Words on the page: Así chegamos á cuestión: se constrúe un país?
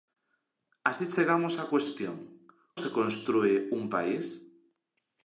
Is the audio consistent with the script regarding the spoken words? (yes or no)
yes